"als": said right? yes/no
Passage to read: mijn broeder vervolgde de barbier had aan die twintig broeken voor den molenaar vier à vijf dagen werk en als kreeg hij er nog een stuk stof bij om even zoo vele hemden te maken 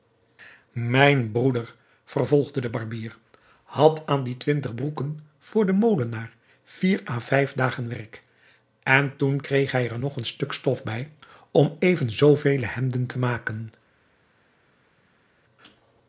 no